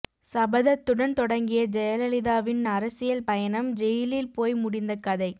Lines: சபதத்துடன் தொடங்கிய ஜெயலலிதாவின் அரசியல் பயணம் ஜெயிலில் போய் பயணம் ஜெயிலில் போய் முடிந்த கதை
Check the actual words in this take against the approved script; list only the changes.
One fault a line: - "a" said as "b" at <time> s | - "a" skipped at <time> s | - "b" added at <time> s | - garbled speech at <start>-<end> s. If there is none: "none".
- "பயணம் ஜெயிலில் போய்" skipped at 4.6 s